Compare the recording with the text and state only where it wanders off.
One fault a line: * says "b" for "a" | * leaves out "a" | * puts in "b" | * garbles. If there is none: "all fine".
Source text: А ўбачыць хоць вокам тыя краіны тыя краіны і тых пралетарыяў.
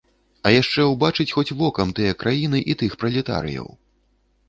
* puts in "яшчэ"
* leaves out "тыя краіны"